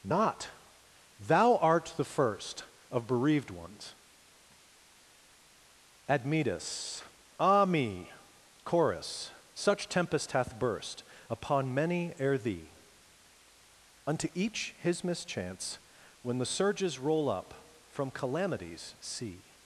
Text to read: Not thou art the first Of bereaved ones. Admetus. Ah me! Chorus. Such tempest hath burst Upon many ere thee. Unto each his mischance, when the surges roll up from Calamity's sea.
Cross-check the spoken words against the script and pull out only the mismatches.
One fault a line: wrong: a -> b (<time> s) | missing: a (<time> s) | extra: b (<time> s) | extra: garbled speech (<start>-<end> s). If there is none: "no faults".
no faults